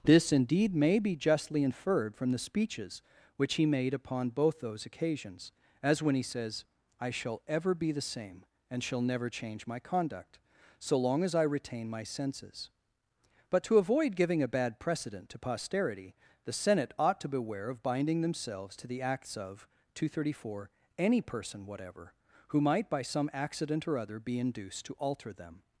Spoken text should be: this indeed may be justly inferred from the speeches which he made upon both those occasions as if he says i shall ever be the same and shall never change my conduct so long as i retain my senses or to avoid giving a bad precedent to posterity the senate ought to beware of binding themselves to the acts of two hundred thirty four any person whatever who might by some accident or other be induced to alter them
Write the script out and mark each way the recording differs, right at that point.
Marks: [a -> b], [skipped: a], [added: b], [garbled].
this indeed may be justly inferred from the speeches which he made upon both those occasions as [if -> when] he says i shall ever be the same and shall never change my conduct so long as i retain my senses [or -> but] to avoid giving a bad precedent to posterity the senate ought to beware of binding themselves to the acts of two hundred thirty four any person whatever who might by some accident or other be induced to alter them